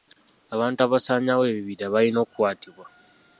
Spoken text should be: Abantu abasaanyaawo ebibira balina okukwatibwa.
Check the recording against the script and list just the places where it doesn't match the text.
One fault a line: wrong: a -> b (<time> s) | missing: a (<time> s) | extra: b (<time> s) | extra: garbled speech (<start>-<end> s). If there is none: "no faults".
no faults